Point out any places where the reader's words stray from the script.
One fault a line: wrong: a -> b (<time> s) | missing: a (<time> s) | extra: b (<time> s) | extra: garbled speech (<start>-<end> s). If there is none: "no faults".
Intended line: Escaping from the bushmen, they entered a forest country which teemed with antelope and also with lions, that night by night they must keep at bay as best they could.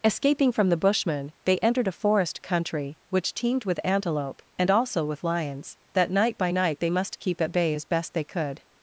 no faults